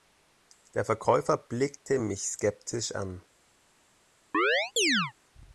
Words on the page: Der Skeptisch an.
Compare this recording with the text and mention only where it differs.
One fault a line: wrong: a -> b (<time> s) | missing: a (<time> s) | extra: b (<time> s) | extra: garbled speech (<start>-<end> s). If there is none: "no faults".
extra: Verkäufer blickte mich (0.8 s)